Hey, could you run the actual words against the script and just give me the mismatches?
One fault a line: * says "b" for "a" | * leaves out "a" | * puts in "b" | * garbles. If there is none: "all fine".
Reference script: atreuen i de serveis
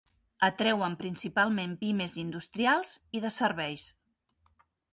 * puts in "principalment pimes industrials"